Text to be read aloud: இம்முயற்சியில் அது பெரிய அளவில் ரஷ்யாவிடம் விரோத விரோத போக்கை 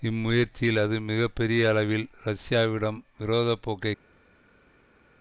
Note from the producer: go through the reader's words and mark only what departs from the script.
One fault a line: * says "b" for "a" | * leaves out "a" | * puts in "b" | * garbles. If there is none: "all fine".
* puts in "மிக"
* leaves out "விரோத"